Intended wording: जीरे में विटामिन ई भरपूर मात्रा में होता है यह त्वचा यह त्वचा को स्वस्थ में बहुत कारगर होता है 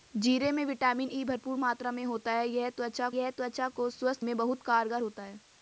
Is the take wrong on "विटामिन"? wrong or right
right